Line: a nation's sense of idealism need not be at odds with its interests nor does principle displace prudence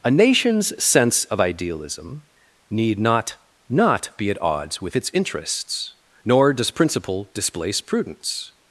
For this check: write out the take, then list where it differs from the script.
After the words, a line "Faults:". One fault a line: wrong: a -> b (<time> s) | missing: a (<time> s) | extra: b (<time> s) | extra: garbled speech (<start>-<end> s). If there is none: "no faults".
a nation's sense of idealism need not not be at odds with its interests nor does principle displace prudence
Faults:
extra: not (3.7 s)